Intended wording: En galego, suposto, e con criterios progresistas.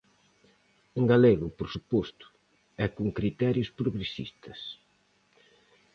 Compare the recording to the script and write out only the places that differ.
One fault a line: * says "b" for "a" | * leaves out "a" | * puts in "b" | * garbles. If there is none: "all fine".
* puts in "por"